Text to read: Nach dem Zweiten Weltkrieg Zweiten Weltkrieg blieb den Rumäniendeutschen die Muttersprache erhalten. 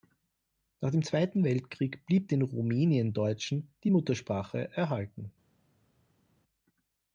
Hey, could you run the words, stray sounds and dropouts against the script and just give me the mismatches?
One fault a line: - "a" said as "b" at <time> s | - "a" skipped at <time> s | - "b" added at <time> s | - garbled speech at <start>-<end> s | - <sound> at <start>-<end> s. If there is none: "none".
- "Zweiten Weltkrieg" skipped at 2.1 s